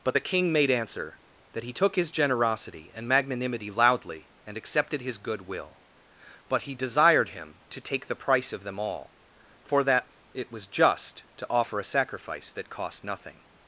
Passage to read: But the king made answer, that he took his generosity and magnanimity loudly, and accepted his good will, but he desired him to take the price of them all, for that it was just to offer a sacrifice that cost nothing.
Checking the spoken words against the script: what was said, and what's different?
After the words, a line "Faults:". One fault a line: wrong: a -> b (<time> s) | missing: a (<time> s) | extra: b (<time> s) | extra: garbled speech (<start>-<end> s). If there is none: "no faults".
But the king made answer, that he took his generosity and magnanimity loudly, and accepted his good will, but he desired him to take the price of them all, for that it was just to offer a sacrifice that cost nothing.
Faults:
no faults